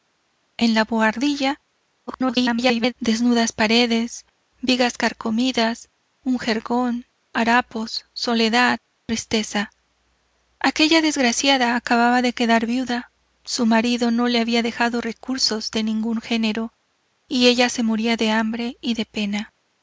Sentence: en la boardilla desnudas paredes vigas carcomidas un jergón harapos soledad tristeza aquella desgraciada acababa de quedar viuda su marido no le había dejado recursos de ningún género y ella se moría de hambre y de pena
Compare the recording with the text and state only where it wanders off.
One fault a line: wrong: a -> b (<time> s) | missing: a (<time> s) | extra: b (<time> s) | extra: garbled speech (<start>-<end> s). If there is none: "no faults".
extra: garbled speech (2.1-2.9 s)